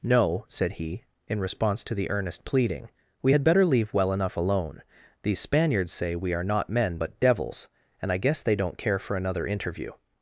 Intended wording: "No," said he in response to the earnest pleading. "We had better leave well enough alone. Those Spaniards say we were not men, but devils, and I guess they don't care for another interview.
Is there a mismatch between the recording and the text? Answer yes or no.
yes